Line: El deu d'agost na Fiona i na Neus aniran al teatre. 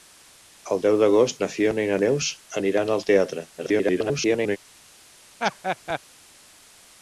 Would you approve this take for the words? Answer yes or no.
no